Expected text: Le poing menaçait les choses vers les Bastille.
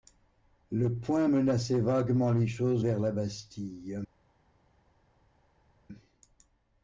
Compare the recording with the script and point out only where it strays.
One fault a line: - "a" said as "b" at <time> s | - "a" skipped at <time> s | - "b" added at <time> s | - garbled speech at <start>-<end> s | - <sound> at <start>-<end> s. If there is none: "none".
- "vaguement" added at 1.8 s
- "les" said as "la" at 3.0 s